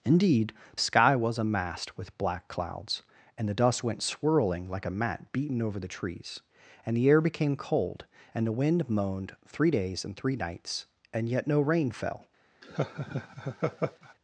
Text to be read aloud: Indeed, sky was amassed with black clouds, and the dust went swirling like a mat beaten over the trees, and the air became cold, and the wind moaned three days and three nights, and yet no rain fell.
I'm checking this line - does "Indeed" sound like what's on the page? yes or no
yes